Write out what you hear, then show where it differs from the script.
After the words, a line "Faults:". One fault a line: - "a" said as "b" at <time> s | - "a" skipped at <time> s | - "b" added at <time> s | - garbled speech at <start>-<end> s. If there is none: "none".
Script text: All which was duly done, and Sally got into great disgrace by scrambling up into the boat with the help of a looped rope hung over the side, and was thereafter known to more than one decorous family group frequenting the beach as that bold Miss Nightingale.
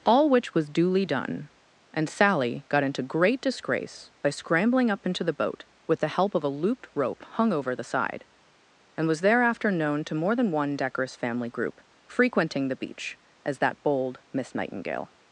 All which was duly done, and Sally got into great disgrace by scrambling up into the boat with the help of a looped rope hung over the side, and was thereafter known to more than one decorous family group frequenting the beach as that bold Miss Nightingale.
Faults:
none